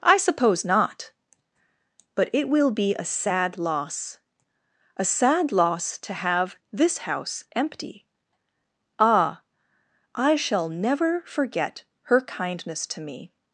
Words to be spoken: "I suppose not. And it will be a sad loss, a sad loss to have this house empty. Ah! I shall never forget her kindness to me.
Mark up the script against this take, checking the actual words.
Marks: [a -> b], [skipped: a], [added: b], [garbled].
"I suppose not. [And -> But] it will be a sad loss, a sad loss to have this house empty. Ah! I shall never forget her kindness to me.